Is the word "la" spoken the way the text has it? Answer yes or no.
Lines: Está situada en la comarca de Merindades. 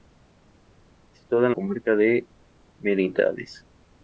no